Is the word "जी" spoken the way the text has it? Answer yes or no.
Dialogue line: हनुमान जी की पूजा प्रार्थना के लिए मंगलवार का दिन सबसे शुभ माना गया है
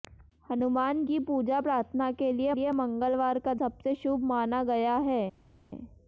no